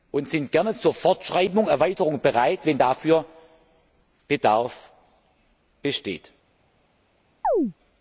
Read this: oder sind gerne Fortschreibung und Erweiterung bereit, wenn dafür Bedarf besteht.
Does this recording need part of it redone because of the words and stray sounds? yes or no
yes